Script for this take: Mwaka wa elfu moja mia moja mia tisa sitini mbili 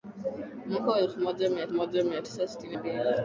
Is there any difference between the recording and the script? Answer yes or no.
no